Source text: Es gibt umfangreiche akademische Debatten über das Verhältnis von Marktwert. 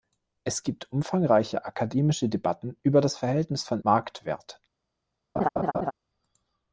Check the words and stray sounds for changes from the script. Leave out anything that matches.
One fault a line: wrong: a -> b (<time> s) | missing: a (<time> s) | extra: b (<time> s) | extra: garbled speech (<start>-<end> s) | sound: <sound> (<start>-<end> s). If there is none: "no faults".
sound: laugh (5.4-5.9 s)